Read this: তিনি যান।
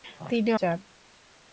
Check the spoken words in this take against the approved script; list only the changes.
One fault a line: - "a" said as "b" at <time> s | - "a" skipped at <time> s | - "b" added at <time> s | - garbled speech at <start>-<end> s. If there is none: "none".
none